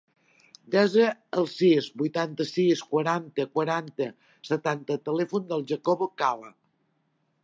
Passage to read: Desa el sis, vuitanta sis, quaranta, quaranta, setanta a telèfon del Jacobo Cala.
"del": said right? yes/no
yes